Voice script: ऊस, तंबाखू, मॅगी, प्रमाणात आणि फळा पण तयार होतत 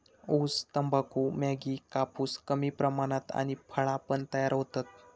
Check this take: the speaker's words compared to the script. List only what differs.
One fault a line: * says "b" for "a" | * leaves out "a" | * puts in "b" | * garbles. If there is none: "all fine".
* puts in "कापूस कमी"